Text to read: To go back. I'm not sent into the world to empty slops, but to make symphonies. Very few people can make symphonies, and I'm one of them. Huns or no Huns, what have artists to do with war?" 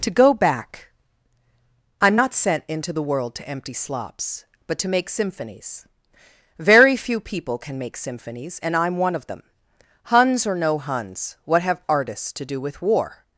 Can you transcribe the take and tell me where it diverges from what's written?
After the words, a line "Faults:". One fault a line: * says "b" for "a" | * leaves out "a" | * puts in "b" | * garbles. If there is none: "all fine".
To go back. I'm not sent into the world to empty slops, but to make symphonies. Very few people can make symphonies, and I'm one of them. Huns or no Huns, what have artists to do with war?"
Faults:
all fine